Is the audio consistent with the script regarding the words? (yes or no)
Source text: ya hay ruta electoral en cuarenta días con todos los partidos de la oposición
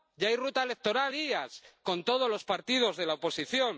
no